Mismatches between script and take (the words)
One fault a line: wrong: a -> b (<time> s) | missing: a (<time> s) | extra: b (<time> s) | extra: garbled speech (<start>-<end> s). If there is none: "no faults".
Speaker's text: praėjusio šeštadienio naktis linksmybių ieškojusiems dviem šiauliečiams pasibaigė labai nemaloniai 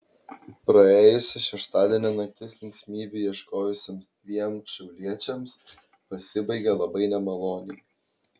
no faults